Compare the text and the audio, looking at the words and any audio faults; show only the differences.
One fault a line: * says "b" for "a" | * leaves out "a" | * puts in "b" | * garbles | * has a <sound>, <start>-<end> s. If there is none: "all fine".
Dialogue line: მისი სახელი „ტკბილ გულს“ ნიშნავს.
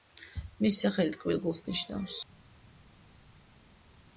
all fine